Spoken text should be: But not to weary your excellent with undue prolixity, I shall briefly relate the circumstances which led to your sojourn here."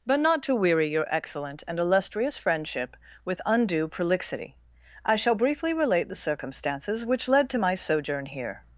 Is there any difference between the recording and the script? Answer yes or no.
yes